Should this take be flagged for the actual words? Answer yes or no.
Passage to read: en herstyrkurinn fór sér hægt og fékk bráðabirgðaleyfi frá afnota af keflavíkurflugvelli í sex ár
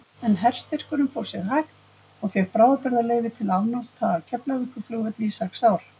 yes